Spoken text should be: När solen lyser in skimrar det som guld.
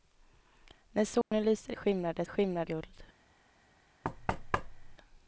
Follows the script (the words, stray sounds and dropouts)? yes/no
no